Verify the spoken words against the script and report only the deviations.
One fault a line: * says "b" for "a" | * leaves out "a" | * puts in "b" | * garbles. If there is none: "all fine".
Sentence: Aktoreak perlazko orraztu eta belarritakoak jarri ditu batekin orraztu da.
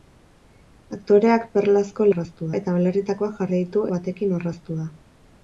all fine